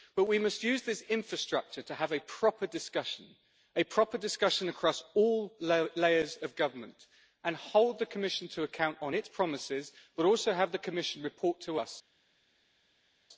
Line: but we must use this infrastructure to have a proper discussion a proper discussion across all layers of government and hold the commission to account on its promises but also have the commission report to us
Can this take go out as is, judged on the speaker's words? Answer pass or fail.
pass